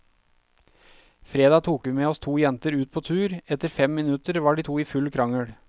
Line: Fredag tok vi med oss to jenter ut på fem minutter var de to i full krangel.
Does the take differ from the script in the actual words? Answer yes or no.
yes